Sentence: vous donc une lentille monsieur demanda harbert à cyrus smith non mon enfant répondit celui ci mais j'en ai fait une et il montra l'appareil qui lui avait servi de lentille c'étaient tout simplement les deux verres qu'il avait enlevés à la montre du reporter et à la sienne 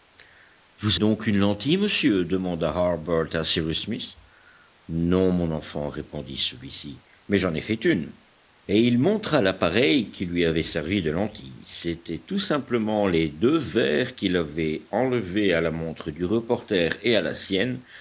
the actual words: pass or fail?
pass